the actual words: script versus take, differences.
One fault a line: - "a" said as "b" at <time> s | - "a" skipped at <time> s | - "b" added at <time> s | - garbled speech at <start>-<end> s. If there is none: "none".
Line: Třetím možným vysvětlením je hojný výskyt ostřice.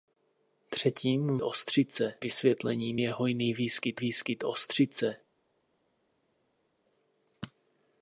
- "možným" said as "ostřice" at 1.4 s
- "výskyt" added at 4.0 s